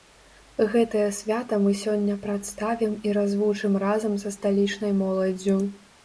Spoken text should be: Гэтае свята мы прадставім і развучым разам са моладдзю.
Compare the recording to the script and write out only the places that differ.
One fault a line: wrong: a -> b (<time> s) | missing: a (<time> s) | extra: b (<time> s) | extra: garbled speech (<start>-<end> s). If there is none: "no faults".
extra: сёння (1.8 s)
extra: сталічнай (4.4 s)